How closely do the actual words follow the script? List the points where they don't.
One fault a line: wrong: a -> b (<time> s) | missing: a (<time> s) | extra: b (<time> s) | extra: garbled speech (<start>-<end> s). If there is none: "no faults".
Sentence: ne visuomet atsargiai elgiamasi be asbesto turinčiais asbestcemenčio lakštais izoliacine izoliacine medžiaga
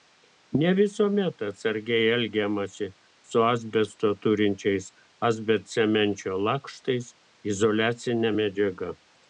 wrong: be -> su (3.3 s)
missing: izoliacine (8.3 s)